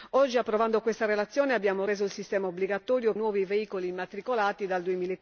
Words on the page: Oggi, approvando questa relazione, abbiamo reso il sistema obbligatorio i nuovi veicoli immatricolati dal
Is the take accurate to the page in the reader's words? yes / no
yes